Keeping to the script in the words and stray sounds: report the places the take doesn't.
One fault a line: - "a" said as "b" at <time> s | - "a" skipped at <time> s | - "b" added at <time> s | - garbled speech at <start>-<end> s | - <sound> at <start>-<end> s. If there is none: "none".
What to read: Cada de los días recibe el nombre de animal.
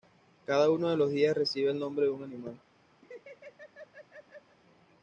- "uno" added at 0.7 s
- "un" added at 2.1 s
- laugh at 3.0-4.6 s